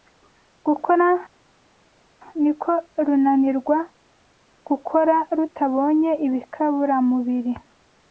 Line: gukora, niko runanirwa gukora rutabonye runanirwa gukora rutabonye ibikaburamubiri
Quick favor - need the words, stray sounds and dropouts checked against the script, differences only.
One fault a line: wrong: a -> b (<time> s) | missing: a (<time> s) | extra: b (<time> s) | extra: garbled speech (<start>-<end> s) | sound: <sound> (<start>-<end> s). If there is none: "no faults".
missing: runanirwa gukora rutabonye (6.1 s)